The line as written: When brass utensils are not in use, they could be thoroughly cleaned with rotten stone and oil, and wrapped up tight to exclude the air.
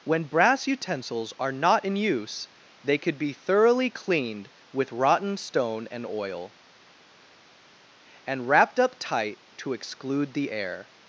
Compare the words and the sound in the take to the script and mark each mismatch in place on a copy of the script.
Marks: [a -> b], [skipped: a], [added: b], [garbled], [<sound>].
When brass utensils are not in use, they could be thoroughly cleaned with rotten stone and oil, and wrapped up tight to exclude the air.